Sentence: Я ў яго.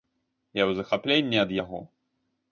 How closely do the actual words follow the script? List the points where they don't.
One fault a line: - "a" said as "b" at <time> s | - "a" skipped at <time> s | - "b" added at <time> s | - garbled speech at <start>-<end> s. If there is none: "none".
- "захапленні ад" added at 0.8 s